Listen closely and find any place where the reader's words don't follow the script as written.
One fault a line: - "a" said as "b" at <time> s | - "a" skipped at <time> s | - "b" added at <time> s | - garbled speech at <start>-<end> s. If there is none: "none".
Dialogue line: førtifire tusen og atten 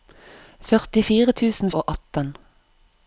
none